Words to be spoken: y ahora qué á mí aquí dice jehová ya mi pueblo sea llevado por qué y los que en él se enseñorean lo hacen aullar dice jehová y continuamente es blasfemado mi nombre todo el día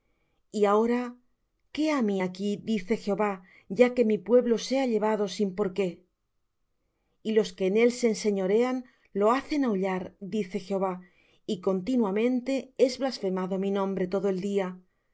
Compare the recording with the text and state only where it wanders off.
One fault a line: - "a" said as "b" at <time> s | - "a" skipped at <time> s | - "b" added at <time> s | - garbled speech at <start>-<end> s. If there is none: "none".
- "que" added at 3.9 s
- "sin" added at 5.4 s